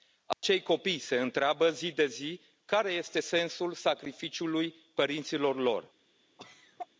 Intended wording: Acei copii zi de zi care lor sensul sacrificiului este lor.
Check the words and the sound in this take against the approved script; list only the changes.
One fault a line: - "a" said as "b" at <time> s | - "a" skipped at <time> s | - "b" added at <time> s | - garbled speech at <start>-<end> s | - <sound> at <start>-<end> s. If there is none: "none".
- dropout at 0.3-0.4 s
- "se întreabă" added at 1.0 s
- "lor" said as "este" at 2.9 s
- "este" said as "părinților" at 4.9 s
- cough at 6.4-6.9 s